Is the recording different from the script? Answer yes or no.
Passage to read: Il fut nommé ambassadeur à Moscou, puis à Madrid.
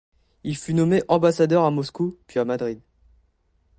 no